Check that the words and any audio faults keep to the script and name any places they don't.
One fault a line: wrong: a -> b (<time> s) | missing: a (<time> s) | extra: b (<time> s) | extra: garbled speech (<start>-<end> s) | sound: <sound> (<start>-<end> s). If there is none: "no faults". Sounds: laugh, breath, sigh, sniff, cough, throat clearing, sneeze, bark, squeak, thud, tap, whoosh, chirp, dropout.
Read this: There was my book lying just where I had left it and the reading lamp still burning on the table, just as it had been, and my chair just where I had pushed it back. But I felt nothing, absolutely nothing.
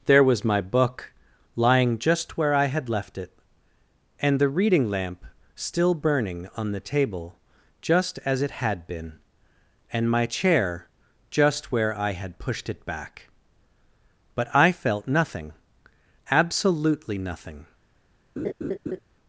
sound: laugh (18.4-19.0 s)